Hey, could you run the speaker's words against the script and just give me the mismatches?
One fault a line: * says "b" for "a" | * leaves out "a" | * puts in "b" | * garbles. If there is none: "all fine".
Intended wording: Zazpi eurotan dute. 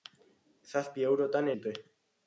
all fine